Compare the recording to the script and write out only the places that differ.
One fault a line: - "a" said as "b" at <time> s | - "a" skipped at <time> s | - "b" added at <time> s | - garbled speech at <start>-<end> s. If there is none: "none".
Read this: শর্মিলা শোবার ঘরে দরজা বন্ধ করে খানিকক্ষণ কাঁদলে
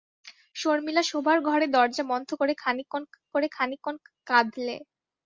- "করে খানিকক্ষণ" added at 3.3 s